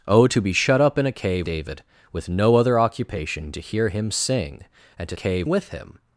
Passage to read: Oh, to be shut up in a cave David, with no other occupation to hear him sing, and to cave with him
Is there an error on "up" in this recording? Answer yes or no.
no